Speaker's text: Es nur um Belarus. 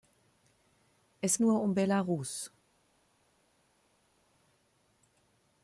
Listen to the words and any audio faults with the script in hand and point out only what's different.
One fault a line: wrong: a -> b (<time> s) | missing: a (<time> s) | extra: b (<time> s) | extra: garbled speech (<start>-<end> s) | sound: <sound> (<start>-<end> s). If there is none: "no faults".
no faults